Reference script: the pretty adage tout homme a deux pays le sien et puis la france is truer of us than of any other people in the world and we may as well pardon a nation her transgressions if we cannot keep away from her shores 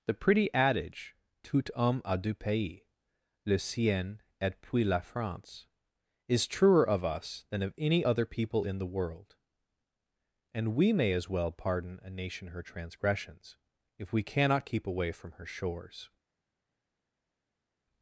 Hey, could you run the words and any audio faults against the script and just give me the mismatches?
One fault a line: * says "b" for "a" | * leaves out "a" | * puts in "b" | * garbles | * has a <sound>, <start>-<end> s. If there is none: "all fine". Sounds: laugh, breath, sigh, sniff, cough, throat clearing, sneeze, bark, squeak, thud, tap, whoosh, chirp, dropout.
all fine